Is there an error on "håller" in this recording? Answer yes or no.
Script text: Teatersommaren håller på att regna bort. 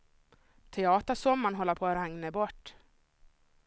no